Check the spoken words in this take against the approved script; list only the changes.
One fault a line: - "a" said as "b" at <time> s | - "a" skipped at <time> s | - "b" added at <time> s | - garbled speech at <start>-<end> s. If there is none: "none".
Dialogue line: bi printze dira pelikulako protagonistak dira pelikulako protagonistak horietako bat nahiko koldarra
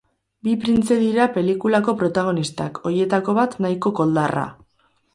- "dira pelikulako protagonistak" skipped at 2.8 s